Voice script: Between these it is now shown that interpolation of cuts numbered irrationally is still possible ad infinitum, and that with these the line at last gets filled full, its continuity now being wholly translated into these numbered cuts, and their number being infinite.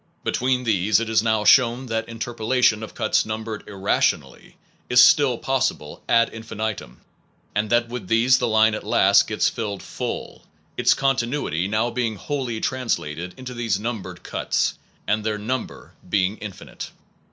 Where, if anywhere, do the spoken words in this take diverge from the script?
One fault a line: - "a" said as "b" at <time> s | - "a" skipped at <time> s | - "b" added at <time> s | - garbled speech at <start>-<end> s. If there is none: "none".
none